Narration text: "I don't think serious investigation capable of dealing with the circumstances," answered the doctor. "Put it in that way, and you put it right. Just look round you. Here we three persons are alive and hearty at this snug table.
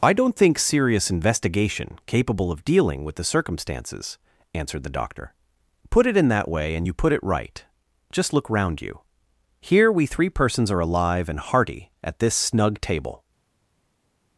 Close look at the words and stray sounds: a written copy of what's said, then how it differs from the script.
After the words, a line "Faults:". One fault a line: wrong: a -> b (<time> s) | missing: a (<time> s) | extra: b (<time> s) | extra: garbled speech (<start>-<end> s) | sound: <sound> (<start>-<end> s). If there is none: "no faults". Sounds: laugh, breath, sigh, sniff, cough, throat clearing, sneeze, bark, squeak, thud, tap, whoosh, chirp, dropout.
"I don't think serious investigation capable of dealing with the circumstances," answered the doctor. "Put it in that way, and you put it right. Just look round you. Here we three persons are alive and hearty at this snug table.
Faults:
no faults